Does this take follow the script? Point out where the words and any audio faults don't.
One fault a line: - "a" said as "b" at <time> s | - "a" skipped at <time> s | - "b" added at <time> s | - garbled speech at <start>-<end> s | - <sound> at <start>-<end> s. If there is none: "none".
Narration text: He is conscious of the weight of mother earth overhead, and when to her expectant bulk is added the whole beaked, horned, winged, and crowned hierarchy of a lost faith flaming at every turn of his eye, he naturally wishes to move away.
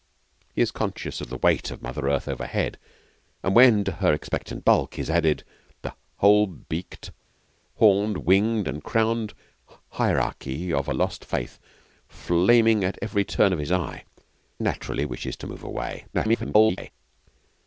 - "he" skipped at 14.0 s
- garbled speech at 16.1-16.9 s